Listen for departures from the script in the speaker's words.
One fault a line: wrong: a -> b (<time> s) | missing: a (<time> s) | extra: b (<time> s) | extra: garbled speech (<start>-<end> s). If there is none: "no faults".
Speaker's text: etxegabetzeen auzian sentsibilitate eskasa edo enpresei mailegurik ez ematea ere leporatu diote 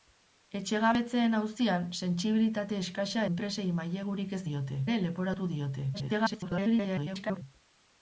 missing: edo (3.3 s)
wrong: ematea -> diote (4.5 s)
extra: garbled speech (5.9-7.4 s)